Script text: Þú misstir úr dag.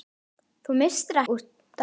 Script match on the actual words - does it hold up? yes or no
yes